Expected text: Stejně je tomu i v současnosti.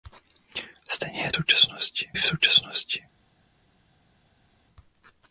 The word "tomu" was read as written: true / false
false